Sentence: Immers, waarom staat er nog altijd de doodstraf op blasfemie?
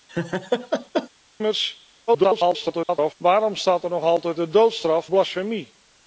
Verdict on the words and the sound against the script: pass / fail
fail